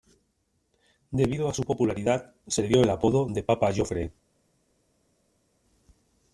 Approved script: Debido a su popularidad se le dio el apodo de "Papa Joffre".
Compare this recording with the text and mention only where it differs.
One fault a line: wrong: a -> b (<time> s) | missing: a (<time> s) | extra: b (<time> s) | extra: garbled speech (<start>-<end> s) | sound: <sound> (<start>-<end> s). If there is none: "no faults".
no faults